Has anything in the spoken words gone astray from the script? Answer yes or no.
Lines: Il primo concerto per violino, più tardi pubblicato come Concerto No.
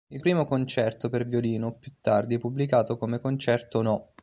no